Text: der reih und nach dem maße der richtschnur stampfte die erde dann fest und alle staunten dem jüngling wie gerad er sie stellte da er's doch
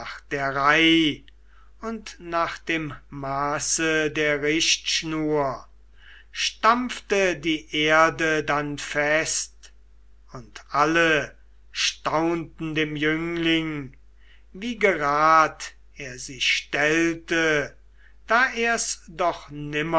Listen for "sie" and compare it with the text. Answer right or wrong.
right